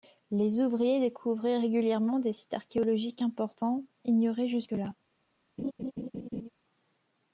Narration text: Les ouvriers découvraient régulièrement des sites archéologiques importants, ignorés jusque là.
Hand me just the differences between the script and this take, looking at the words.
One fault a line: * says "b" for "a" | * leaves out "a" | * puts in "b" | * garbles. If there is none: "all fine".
all fine